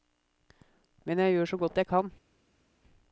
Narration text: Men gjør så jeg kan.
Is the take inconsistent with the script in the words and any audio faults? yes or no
yes